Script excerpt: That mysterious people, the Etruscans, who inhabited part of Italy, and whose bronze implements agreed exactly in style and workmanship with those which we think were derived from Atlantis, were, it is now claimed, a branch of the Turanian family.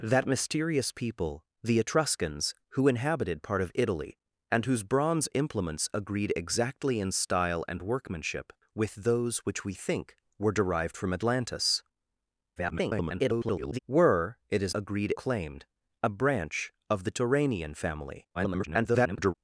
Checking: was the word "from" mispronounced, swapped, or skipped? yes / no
no